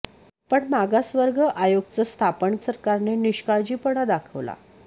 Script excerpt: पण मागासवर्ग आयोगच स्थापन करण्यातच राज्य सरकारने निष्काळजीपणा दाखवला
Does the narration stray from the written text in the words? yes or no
yes